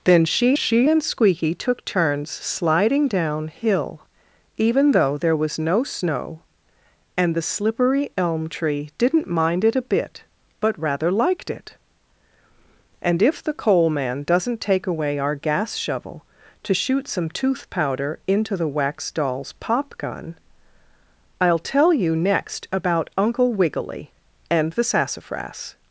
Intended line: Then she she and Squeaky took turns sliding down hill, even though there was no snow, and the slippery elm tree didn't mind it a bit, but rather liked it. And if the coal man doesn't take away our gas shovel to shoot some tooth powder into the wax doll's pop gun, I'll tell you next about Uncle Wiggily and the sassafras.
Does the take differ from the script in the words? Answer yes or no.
no